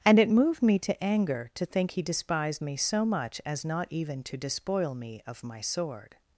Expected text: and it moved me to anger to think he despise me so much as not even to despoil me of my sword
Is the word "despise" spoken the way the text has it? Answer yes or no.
no